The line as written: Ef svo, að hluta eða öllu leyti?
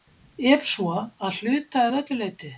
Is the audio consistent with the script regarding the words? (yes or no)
yes